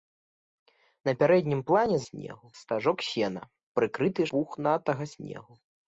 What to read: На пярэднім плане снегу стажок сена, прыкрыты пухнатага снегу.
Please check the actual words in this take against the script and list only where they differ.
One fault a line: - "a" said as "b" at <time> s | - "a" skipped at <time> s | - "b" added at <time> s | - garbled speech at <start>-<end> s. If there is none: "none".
none